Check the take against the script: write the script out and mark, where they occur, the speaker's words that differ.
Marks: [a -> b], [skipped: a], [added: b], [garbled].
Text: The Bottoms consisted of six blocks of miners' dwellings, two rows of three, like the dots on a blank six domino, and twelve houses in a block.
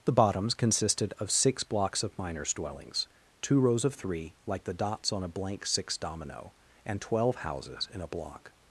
The Bottoms consisted of six blocks of miners' dwellings, two rows of three, like the dots on a blank six domino, and twelve houses in a block.